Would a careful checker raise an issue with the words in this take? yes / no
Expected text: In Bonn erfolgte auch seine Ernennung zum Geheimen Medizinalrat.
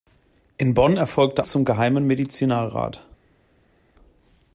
yes